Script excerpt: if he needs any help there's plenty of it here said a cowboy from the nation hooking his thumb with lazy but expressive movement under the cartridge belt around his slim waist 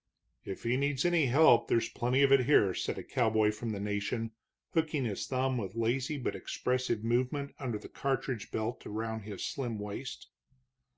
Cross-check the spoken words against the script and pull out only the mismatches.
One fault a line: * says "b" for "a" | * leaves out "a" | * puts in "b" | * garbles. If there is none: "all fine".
all fine